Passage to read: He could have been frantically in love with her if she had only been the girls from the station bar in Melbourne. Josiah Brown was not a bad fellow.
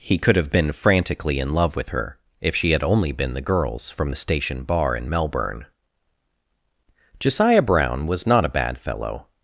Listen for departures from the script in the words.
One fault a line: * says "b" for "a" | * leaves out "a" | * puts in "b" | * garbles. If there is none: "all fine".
all fine